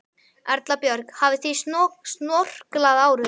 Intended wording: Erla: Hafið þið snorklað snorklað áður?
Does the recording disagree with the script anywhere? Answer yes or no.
yes